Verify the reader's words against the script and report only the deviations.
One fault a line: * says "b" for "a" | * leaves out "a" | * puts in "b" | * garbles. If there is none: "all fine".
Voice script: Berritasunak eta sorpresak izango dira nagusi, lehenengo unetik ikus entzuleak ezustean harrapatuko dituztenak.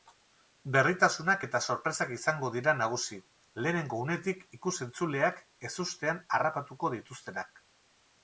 all fine